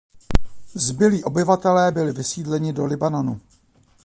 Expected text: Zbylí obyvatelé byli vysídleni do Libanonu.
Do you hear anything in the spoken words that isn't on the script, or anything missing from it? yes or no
no